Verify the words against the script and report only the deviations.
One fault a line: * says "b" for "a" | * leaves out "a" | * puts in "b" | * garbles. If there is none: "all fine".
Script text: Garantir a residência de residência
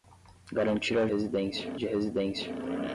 all fine